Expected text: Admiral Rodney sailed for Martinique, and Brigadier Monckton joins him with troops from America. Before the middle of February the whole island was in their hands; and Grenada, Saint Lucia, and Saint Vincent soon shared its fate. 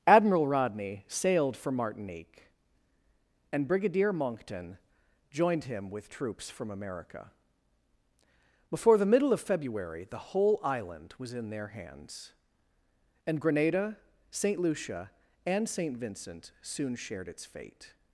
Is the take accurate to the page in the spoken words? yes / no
no